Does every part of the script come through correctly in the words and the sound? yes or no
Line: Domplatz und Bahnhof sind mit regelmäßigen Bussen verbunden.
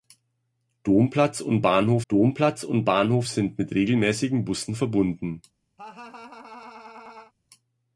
no